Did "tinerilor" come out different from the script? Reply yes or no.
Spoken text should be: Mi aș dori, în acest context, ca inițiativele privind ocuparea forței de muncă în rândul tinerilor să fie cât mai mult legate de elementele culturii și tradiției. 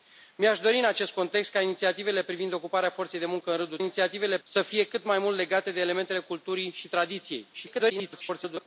yes